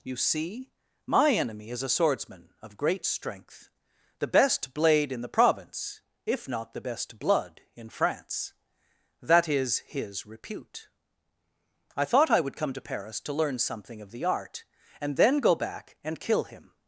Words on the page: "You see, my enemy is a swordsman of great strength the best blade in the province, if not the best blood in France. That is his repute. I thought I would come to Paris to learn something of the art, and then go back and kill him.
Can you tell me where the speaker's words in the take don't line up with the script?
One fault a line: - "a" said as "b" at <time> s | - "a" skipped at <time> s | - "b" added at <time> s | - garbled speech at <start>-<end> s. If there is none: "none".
none